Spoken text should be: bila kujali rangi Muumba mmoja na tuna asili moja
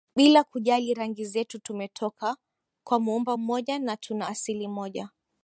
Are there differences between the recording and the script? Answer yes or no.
yes